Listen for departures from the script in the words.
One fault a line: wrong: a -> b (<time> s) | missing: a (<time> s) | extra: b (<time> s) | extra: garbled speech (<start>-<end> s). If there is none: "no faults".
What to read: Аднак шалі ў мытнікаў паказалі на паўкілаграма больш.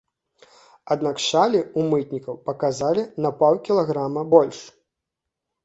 no faults